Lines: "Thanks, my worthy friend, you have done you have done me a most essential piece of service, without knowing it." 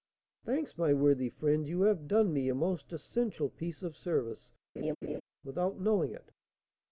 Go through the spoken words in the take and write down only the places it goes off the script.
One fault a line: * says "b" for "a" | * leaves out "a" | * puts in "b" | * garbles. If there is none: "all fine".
* leaves out "you have done"